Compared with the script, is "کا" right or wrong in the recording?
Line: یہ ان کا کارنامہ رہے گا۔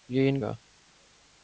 wrong